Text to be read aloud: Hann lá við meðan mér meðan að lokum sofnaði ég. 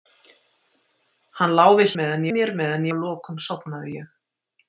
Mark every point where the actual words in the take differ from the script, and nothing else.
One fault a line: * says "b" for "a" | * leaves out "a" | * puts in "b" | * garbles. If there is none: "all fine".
all fine